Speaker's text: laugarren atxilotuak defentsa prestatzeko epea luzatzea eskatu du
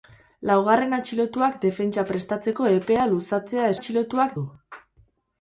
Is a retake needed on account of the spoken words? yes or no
yes